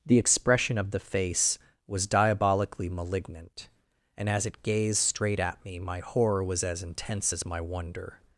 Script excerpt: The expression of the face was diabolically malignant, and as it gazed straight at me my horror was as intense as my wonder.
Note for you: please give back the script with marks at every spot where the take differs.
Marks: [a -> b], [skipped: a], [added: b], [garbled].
The expression of the face was diabolically malignant, and as it gazed straight at me my horror was as intense as my wonder.